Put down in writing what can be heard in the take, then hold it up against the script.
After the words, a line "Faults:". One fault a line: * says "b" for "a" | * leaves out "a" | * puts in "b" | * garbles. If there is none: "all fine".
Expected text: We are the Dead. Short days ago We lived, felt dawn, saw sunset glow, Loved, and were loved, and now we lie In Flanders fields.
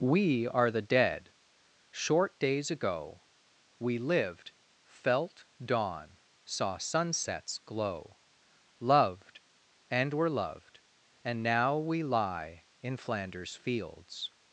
We are the Dead. Short days ago We lived, felt dawn, saw sunsets glow, Loved, and were loved, and now we lie In Flanders fields.
Faults:
* says "sunsets" for "sunset"